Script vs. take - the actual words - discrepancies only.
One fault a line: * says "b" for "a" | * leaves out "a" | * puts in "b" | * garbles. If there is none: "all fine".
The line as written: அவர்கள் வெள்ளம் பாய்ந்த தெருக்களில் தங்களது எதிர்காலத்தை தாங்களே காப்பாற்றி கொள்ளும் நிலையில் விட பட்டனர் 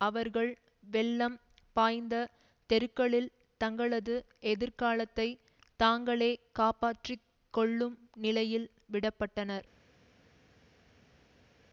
all fine